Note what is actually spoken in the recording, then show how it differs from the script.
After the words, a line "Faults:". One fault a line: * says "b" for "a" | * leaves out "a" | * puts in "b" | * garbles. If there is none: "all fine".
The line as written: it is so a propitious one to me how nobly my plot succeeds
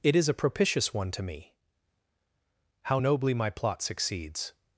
it is a propitious one to me how nobly my plot succeeds
Faults:
* leaves out "so"